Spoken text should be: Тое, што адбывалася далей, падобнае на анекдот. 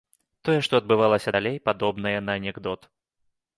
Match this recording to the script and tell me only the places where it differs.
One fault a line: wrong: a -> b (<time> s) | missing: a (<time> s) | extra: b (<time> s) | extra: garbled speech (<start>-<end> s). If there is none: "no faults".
no faults